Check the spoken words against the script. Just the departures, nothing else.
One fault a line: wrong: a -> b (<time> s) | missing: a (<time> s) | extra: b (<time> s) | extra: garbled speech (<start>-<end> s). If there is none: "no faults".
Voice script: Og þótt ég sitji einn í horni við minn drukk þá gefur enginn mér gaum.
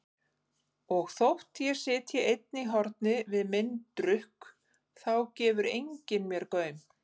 no faults